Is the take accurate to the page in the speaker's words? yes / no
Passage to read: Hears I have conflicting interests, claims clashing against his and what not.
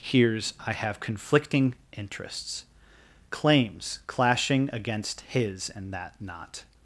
no